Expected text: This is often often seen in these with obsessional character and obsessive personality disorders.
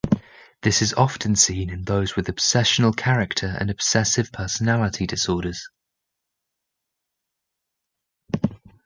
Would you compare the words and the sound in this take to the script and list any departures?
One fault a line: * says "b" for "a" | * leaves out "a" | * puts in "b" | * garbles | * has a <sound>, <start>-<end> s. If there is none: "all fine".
* leaves out "often"
* says "those" for "these"